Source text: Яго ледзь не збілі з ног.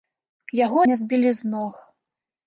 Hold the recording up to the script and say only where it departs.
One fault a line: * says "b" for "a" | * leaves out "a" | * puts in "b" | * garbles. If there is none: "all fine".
* leaves out "ледзь"